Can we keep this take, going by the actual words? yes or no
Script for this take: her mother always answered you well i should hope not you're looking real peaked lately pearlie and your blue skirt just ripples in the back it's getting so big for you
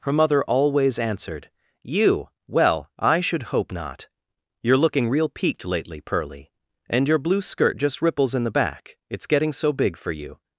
yes